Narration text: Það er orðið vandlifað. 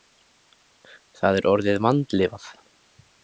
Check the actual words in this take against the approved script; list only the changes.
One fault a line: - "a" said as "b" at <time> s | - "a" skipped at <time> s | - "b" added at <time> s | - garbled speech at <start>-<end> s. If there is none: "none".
none